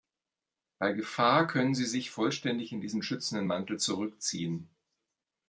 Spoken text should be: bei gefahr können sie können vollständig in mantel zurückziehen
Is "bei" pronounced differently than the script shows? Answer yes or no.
no